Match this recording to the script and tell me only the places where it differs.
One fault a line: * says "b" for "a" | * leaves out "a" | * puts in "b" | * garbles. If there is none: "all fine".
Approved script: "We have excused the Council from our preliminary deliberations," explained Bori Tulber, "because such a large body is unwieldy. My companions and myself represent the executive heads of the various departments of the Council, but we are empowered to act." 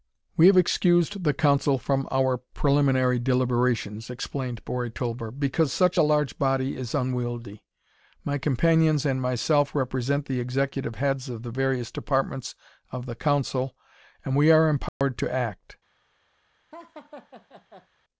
* says "and" for "but"